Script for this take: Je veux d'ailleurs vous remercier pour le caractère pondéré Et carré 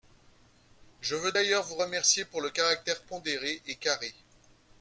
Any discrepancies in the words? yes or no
no